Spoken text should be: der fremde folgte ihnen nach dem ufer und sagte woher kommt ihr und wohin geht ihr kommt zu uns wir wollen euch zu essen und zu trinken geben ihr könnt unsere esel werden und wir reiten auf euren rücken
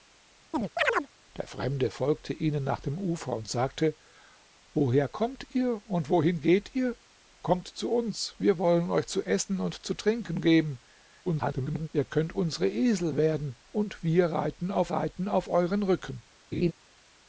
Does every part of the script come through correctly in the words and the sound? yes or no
no